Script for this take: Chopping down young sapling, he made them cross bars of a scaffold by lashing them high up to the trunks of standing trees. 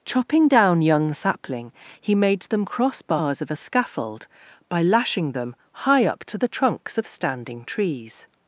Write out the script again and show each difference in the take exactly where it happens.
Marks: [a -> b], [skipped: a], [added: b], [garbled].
Chopping down young sapling, he made them cross bars of a scaffold by lashing them high up to the trunks of standing trees.